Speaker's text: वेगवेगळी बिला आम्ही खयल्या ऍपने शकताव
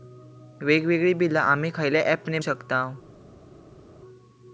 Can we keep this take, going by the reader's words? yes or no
yes